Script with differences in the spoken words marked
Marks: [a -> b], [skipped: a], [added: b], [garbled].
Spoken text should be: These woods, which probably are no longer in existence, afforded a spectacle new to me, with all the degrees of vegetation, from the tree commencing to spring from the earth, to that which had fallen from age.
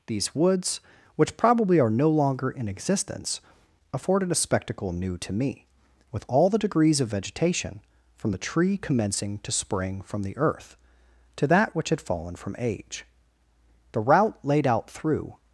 These woods, which probably are no longer in existence, afforded a spectacle new to me, with all the degrees of vegetation, from the tree commencing to spring from the earth, to that which had fallen from age. [added: The route laid out through]